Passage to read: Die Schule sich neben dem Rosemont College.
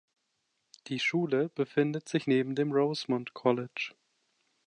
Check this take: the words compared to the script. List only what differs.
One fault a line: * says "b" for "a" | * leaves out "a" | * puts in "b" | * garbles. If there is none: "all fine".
* puts in "befindet"